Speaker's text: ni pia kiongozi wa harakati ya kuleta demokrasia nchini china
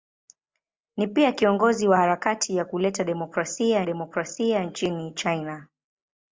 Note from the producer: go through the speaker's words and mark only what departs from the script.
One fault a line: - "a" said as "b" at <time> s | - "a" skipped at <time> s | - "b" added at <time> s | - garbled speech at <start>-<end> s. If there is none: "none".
- "demokrasia" added at 3.8 s